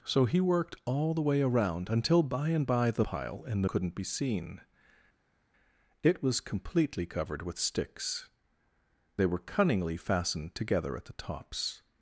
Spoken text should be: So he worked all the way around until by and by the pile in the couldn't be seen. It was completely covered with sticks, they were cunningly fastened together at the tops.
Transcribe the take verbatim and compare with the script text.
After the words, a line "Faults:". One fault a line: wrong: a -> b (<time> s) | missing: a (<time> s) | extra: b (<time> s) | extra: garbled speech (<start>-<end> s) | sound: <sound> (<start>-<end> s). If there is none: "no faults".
So he worked all the way around until by and by the pile in the couldn't be seen. It was completely covered with sticks, they were cunningly fastened together at the tops.
Faults:
no faults